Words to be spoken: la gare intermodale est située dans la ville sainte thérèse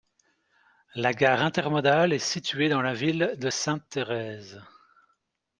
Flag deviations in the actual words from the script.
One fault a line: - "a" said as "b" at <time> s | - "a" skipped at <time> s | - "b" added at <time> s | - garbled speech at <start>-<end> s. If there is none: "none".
- "de" added at 3.4 s